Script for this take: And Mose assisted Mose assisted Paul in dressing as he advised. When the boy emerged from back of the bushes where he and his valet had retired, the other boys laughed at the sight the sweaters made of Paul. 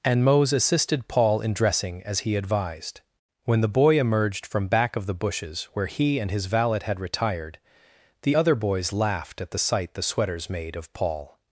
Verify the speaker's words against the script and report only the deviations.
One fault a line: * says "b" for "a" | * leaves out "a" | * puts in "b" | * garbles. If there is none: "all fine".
* leaves out "Mose assisted"